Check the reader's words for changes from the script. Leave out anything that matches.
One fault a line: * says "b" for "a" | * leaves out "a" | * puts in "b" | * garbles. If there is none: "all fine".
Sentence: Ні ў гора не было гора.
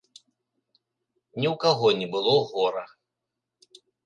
* says "каго" for "гора"